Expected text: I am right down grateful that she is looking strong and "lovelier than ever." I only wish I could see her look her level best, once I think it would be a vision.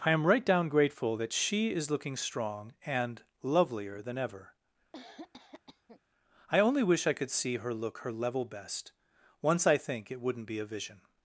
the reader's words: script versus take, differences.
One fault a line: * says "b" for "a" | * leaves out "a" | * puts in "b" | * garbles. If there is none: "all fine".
* says "wouldn't" for "would"